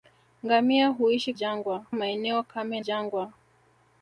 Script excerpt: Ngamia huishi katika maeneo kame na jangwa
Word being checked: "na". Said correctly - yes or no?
no